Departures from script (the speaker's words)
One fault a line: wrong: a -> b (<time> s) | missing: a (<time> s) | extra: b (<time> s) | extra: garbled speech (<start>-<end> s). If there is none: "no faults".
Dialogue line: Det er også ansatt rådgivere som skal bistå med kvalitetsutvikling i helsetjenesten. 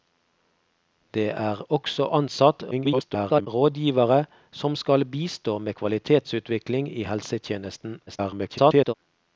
extra: garbled speech (2.7-3.5 s)
extra: garbled speech (8.1-8.9 s)